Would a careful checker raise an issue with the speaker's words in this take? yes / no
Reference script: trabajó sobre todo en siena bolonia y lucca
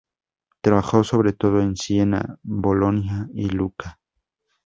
no